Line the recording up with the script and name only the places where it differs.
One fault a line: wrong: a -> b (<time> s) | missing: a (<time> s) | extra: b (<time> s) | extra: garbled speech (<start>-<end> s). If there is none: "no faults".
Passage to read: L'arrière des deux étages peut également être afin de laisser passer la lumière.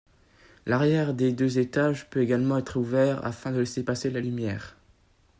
extra: ouvert (2.8 s)